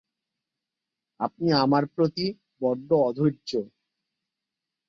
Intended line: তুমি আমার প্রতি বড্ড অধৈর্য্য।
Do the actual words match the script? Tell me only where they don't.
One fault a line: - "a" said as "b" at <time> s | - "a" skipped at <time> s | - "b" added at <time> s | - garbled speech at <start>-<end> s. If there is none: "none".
- "তুমি" said as "আপনি" at 1.2 s